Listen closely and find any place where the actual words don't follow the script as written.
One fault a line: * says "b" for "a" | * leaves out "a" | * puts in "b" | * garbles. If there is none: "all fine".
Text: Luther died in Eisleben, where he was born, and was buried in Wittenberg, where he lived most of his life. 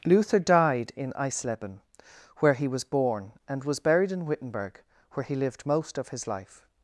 all fine